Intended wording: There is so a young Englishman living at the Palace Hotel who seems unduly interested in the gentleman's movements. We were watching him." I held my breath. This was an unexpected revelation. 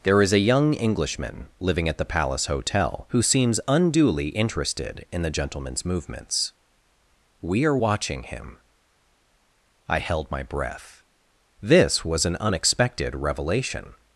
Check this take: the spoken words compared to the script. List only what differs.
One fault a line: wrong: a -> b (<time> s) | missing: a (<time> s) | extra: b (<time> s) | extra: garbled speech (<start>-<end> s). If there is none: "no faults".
missing: so (0.3 s)
wrong: were -> are (7.6 s)